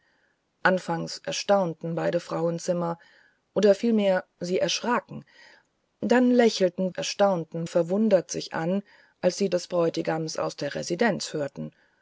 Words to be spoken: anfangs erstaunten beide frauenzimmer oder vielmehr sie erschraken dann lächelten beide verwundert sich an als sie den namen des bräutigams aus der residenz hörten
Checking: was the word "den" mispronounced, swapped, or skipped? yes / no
yes